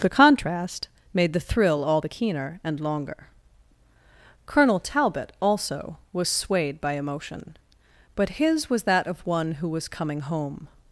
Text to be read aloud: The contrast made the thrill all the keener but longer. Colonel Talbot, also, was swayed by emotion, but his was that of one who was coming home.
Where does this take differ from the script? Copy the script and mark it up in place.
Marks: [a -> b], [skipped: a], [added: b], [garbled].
The contrast made the thrill all the keener [but -> and] longer. Colonel Talbot, also, was swayed by emotion, but his was that of one who was coming home.